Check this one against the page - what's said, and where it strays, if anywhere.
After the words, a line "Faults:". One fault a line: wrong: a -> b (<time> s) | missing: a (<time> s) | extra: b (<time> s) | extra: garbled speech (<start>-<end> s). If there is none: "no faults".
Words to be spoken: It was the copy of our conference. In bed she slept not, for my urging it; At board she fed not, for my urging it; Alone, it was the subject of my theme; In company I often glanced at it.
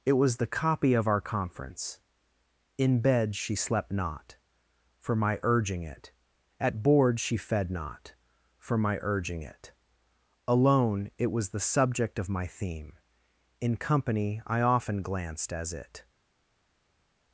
It was the copy of our conference. In bed she slept not, for my urging it; At board she fed not, for my urging it; Alone, it was the subject of my theme; In company I often glanced as it.
Faults:
wrong: at -> as (15.5 s)